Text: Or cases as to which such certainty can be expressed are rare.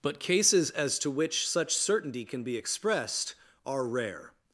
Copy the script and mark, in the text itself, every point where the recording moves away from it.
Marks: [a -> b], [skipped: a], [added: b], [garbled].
[Or -> But] cases as to which such certainty can be expressed are rare.